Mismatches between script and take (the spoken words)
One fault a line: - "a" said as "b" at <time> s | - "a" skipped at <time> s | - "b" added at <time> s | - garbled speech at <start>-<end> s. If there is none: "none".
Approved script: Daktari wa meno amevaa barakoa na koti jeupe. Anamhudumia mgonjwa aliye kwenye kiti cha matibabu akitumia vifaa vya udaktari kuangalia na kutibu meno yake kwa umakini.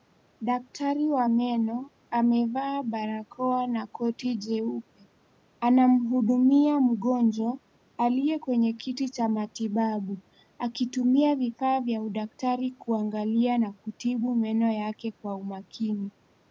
none